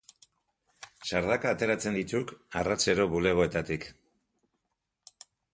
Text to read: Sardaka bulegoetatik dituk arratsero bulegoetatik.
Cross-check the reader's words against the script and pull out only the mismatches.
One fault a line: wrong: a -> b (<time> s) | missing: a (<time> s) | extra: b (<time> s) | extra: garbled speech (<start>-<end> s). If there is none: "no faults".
wrong: bulegoetatik -> ateratzen (1.6 s)